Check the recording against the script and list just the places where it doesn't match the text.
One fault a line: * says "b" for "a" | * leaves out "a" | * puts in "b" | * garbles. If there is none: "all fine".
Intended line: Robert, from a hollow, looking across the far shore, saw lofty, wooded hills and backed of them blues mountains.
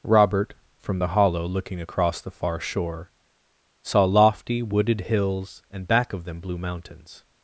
* says "the" for "a"
* says "back" for "backed"
* says "blue" for "blues"